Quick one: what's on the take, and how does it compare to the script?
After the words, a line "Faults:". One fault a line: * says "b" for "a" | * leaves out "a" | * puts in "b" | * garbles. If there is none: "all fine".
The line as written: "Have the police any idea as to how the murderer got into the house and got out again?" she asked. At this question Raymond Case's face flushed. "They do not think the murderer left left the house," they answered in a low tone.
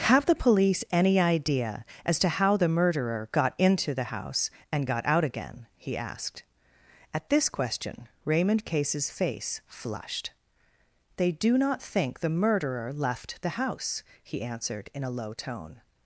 "Have the police any idea as to how the murderer got into the house and got out again?" he asked. At this question Raymond Case's face flushed. "They do not think the murderer left the house," he answered in a low tone.
Faults:
* says "he" for "she"
* leaves out "left"
* says "he" for "they"